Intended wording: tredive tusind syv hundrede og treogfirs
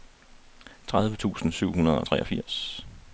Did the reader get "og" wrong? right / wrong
right